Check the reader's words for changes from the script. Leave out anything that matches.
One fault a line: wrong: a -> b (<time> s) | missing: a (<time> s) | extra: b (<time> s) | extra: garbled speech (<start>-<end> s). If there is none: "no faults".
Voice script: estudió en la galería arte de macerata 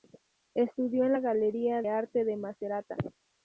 no faults